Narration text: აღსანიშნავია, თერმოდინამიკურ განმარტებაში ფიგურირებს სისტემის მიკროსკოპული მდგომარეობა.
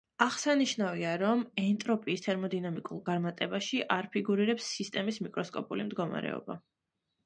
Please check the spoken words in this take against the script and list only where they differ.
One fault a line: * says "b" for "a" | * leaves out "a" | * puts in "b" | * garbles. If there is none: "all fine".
* puts in "რომ ენტროპიის"
* puts in "არ"